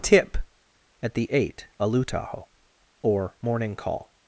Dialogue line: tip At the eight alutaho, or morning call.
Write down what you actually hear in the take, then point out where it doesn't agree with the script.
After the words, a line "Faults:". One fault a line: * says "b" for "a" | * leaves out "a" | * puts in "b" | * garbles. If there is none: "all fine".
tip At the eight alutaho, or morning call.
Faults:
all fine